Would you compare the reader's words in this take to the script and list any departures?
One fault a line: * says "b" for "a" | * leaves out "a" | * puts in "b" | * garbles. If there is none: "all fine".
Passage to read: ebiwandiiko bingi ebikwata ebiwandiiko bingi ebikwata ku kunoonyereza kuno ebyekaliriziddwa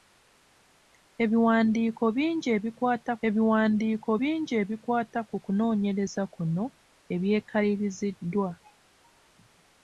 all fine